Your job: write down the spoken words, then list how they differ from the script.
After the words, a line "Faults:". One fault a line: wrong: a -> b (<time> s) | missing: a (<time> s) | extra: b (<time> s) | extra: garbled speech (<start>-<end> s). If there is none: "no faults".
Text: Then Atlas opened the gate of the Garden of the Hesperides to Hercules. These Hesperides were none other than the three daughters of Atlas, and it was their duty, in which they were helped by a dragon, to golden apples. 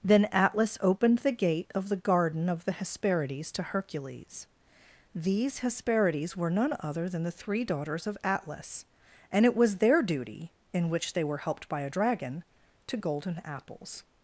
Then Atlas opened the gate of the Garden of the Hesperides to Hercules. These Hesperides were none other than the three daughters of Atlas, and it was their duty, in which they were helped by a dragon, to golden apples.
Faults:
no faults